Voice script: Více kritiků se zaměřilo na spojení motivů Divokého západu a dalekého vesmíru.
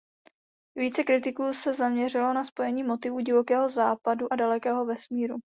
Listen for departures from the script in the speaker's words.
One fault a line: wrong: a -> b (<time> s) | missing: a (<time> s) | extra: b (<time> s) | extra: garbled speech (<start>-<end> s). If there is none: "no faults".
no faults